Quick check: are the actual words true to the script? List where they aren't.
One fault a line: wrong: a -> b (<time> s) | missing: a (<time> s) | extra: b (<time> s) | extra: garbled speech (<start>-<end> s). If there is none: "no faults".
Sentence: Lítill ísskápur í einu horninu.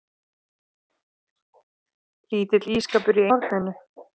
missing: einu (3.3 s)